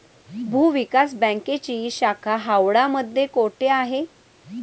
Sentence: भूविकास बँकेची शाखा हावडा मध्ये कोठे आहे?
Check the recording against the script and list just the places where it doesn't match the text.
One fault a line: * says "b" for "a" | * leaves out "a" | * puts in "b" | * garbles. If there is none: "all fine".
all fine